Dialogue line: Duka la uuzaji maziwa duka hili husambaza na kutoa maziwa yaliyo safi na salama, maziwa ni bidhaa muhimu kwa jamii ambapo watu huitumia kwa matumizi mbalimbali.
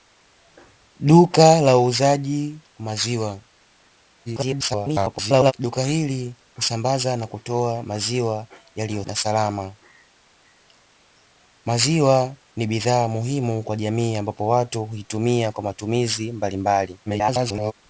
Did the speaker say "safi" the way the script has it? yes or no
no